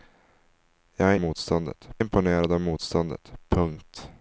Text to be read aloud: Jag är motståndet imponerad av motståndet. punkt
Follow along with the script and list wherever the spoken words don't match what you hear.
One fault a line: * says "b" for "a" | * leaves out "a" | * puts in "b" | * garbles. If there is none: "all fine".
all fine